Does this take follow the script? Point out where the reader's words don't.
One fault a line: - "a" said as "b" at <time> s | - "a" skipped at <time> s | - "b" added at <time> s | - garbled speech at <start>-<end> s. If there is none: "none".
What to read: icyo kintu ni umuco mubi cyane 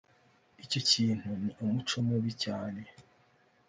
none